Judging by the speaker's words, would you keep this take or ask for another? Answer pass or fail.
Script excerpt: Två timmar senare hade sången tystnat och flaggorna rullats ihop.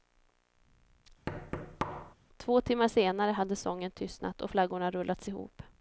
pass